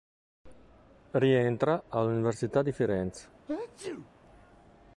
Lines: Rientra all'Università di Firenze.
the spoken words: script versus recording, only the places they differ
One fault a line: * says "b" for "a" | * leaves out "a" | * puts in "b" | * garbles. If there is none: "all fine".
all fine